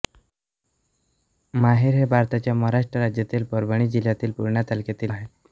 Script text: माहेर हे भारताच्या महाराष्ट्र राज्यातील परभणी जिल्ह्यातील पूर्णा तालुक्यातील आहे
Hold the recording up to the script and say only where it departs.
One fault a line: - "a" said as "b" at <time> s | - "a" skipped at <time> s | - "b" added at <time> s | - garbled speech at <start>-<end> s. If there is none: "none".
none